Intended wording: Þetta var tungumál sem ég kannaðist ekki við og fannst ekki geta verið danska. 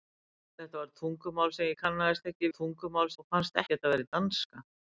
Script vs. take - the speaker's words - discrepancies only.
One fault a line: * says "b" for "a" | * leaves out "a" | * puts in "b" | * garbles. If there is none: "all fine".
* says "tungumál" for "við"
* leaves out "ekki"